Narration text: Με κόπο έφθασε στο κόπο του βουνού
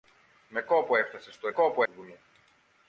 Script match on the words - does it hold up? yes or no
yes